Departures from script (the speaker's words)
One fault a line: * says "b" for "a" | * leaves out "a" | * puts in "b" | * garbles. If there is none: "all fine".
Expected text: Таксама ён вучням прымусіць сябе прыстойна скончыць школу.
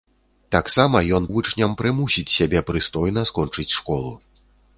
all fine